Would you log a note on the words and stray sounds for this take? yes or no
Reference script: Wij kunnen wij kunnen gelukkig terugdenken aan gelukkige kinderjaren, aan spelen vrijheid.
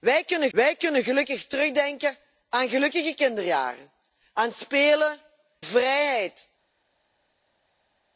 no